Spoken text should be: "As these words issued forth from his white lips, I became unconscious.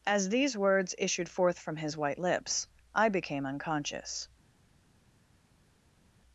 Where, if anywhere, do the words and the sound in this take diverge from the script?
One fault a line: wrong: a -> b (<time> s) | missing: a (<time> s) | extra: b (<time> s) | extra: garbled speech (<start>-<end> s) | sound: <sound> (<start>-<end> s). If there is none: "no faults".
no faults